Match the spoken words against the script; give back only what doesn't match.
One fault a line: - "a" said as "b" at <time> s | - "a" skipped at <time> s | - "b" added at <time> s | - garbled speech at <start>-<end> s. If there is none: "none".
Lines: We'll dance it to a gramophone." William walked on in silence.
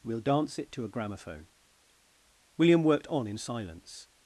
- "walked" said as "worked" at 2.8 s